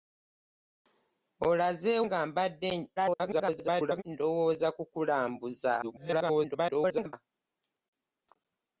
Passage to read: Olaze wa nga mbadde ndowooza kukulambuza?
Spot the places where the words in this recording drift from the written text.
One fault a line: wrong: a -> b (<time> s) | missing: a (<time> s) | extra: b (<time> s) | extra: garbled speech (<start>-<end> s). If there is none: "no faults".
missing: wa (1.9 s)
extra: garbled speech (3.0-4.0 s)
extra: garbled speech (5.8-7.1 s)